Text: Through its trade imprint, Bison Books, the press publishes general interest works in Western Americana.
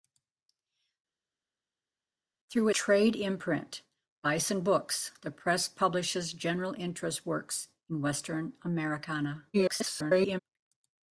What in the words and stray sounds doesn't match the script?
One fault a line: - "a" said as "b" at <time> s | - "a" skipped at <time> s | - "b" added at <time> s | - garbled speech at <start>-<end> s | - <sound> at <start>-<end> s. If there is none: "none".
- "its" skipped at 2.7 s
- garbled speech at 9.5-10.4 s